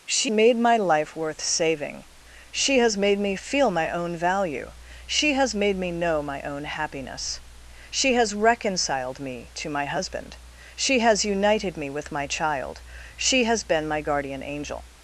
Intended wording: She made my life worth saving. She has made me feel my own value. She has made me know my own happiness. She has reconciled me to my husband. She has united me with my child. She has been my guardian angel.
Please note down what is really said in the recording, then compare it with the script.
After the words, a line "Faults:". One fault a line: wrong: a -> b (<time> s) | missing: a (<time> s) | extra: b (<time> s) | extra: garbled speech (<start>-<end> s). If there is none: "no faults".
She made my life worth saving. She has made me feel my own value. She has made me know my own happiness. She has reconciled me to my husband. She has united me with my child. She has been my guardian angel.
Faults:
no faults